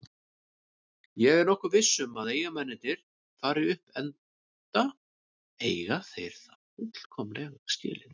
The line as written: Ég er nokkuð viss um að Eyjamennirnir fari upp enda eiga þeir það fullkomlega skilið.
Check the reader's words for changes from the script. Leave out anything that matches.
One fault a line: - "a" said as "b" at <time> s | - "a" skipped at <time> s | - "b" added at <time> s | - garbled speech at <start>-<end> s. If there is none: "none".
none